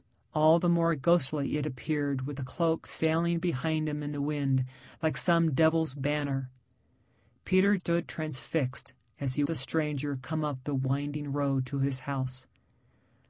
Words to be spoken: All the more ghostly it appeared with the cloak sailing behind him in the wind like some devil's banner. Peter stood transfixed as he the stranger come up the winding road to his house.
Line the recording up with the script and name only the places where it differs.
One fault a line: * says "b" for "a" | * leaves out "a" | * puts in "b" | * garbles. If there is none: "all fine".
all fine